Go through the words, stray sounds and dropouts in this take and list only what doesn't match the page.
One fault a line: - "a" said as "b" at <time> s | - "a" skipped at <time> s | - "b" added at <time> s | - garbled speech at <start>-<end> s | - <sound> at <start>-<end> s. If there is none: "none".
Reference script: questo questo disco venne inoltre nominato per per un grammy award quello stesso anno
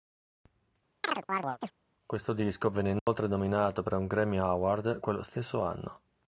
- chirp at 1.0-1.7 s
- "questo" skipped at 2.3 s
- dropout at 3.0-3.1 s
- "per" skipped at 3.9 s